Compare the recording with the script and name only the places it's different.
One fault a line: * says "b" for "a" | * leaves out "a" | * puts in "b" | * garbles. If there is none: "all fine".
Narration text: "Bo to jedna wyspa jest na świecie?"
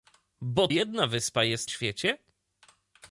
* leaves out "to"
* leaves out "na"